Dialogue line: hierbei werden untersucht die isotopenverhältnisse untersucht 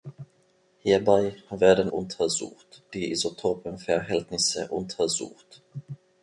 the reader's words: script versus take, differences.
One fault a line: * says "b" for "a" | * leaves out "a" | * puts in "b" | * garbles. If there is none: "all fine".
all fine